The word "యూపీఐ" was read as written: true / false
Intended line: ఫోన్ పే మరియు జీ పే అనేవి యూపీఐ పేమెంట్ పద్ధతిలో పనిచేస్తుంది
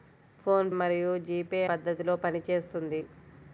false